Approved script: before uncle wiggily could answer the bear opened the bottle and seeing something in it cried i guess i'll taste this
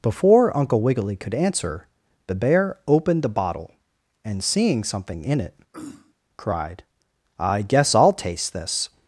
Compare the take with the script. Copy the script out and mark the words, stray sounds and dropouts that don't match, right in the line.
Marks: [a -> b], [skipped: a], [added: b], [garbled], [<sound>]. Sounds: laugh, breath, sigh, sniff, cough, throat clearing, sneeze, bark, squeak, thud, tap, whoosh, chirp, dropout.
before uncle wiggily could answer the bear opened the bottle and seeing something in it [throat clearing] cried i guess i'll taste this